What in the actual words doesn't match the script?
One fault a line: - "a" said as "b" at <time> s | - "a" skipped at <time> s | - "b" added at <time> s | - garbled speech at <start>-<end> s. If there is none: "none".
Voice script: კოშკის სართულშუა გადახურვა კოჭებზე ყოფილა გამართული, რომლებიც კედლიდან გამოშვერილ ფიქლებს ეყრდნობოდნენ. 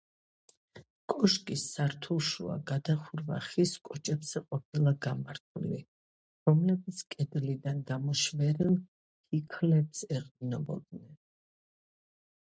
- "ხის" added at 3.5 s